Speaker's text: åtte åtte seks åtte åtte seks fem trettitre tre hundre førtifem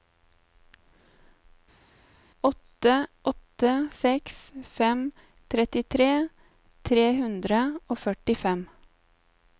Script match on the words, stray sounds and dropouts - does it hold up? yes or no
no